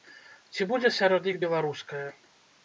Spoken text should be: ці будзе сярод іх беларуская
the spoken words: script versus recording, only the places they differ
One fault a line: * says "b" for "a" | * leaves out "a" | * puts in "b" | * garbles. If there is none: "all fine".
all fine